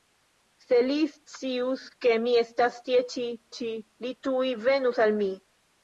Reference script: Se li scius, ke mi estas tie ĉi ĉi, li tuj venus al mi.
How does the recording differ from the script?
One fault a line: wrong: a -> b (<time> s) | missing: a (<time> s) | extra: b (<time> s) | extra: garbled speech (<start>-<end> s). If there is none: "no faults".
no faults